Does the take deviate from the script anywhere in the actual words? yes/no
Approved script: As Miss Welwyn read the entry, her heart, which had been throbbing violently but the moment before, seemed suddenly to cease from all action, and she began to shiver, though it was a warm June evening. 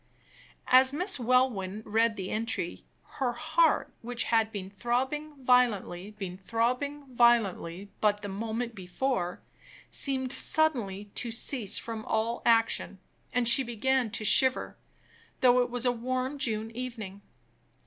yes